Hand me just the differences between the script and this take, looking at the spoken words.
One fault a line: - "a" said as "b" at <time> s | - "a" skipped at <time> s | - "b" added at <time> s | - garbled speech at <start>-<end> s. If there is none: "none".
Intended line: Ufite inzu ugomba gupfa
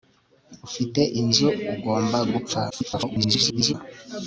- garbled speech at 2.7-3.7 s